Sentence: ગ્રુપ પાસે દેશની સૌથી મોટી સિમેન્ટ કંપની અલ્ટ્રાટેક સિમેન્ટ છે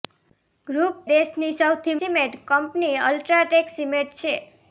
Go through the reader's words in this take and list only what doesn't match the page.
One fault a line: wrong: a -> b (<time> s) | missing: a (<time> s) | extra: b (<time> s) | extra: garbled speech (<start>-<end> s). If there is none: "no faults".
missing: પાસે (1.0 s)
missing: મોટી (2.0 s)